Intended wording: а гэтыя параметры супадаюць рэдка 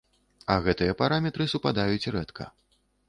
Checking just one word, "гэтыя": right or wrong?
right